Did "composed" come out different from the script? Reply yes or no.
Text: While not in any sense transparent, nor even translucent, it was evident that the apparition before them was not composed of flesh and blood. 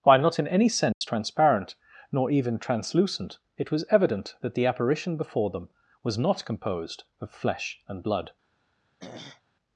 no